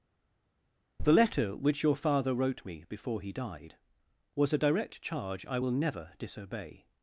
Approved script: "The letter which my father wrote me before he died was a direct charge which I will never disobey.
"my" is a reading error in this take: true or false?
true